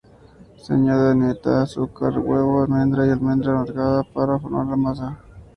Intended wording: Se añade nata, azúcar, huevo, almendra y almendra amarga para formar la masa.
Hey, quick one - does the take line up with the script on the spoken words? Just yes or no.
yes